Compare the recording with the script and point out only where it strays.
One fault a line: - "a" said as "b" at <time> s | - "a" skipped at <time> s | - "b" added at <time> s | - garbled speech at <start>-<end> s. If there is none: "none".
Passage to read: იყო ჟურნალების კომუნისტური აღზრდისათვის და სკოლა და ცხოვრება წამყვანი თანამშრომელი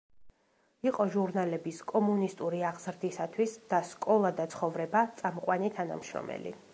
none